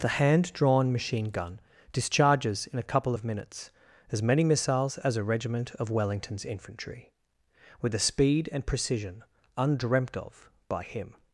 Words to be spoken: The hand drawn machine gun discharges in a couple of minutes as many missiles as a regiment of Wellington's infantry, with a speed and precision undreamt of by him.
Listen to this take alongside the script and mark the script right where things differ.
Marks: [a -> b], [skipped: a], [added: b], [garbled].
The hand drawn machine gun discharges in a couple of minutes as many missiles as a regiment of Wellington's infantry, with a speed and precision undreamt of by him.